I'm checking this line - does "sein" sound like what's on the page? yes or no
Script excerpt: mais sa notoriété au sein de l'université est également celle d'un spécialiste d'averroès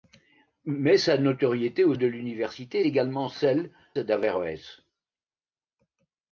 no